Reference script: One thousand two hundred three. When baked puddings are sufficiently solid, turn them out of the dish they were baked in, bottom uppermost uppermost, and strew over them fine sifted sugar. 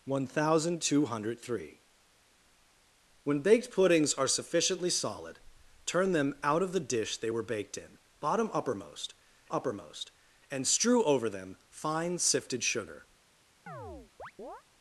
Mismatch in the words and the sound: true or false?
true